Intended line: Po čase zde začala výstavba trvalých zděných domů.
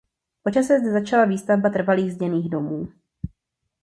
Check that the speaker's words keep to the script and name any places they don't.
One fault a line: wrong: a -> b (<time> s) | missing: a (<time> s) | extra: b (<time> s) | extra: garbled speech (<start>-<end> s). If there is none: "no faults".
no faults